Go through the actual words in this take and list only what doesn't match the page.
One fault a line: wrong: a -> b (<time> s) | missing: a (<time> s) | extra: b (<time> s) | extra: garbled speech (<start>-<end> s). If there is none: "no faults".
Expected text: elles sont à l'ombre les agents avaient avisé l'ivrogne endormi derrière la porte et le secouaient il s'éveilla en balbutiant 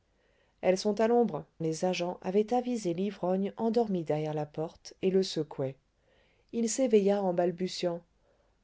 no faults